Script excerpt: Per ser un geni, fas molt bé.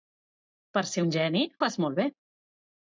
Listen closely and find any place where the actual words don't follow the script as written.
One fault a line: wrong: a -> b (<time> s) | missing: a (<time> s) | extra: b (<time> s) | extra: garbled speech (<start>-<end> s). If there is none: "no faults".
no faults